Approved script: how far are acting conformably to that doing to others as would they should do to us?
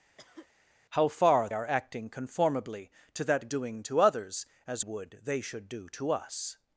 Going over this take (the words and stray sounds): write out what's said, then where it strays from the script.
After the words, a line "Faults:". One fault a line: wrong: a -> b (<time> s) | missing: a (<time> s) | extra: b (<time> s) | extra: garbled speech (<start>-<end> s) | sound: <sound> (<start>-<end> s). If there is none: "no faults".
how far are acting conformably to that doing to others as would they should do to us?
Faults:
sound: cough (0.2-0.5 s)